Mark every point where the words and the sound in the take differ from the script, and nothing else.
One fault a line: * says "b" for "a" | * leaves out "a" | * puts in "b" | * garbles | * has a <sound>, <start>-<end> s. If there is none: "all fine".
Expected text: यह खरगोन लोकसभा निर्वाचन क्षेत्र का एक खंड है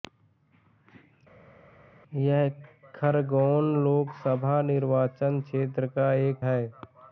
* leaves out "खंड"